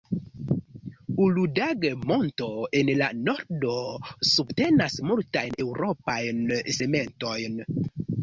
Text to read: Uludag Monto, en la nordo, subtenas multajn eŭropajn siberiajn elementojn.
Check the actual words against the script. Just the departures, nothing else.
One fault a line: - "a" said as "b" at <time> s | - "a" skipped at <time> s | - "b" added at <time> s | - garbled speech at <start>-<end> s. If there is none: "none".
- "siberiajn" skipped at 6.5 s